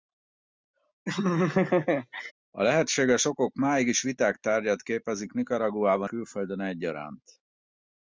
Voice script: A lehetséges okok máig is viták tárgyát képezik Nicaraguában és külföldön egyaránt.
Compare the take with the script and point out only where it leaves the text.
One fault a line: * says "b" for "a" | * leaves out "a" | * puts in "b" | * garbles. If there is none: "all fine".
* leaves out "és"